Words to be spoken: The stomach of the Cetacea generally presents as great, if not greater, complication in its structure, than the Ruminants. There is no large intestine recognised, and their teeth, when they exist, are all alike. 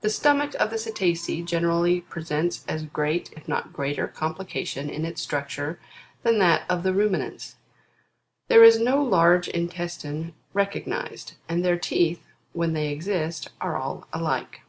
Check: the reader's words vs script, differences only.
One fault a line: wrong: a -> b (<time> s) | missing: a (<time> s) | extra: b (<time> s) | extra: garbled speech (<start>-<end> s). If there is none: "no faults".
extra: that of (6.4 s)